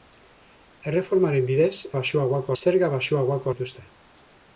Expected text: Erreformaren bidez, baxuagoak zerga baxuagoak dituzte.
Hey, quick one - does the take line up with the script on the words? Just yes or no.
yes